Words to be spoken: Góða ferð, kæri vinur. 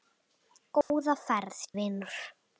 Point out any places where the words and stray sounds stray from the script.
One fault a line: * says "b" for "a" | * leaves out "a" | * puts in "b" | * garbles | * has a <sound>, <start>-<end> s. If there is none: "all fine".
* has a dropout, 0.8-0.9 s
* leaves out "kæri"